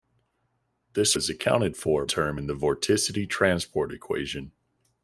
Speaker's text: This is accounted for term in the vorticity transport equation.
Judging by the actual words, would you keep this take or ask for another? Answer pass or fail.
pass